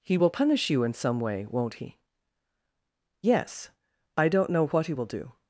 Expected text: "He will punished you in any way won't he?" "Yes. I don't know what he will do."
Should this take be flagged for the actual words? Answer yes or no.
yes